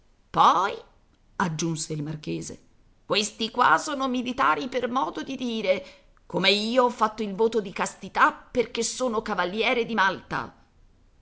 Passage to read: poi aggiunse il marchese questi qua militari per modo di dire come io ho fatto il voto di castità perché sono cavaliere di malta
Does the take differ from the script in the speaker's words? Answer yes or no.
yes